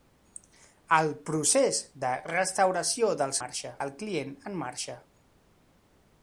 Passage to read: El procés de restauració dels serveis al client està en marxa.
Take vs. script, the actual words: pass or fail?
fail